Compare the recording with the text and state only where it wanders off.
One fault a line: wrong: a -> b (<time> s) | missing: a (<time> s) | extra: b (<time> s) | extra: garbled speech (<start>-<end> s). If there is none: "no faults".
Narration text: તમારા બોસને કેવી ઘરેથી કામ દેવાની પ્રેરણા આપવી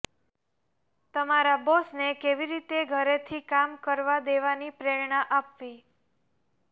extra: રીતે (2.5 s)
extra: કરવા (3.8 s)